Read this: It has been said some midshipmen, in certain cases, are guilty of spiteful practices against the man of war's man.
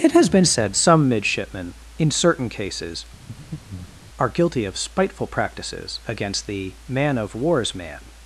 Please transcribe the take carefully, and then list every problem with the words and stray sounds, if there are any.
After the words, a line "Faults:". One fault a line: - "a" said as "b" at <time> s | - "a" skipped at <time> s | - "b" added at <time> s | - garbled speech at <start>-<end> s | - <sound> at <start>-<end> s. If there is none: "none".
It has been said some midshipmen, in certain cases, are guilty of spiteful practices against the man of war's man.
Faults:
- breath at 3.3-4.1 s